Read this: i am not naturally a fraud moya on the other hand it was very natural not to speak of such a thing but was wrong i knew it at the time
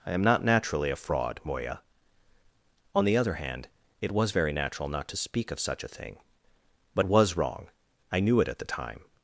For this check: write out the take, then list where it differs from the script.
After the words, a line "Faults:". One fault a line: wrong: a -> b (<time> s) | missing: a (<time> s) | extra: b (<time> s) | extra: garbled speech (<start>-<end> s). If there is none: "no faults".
i am not naturally a fraud moya on the other hand it was very natural not to speak of such a thing but was wrong i knew it at the time
Faults:
no faults